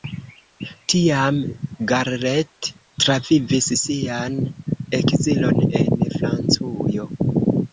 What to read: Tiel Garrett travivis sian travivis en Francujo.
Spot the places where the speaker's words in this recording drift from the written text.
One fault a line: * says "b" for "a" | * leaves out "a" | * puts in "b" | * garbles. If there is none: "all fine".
* says "Tiam" for "Tiel"
* says "ekzilon" for "travivis"